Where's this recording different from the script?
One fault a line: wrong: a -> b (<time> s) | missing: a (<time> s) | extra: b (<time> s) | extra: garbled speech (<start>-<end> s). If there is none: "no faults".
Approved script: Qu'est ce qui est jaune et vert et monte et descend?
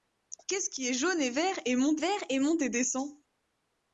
extra: vert et monte (2.0 s)